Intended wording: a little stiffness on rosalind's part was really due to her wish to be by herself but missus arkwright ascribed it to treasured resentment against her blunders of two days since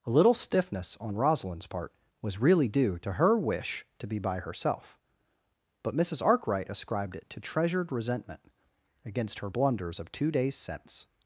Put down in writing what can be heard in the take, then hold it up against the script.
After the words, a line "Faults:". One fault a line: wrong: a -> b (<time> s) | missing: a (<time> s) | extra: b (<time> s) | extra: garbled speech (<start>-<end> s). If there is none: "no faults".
a little stiffness on rosalind's part was really due to her wish to be by herself but missus arkwright ascribed it to treasured resentment against her blunders of two days since
Faults:
no faults